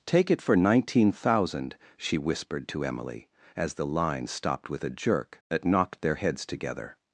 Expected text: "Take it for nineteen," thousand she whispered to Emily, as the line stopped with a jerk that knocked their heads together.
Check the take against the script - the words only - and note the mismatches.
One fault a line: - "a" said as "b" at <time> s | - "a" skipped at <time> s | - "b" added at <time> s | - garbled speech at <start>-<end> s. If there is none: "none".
none